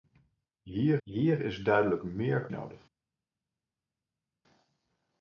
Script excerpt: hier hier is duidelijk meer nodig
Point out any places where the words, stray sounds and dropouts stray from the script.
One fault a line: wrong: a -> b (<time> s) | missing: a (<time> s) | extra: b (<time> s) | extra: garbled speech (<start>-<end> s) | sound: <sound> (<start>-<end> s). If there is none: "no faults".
no faults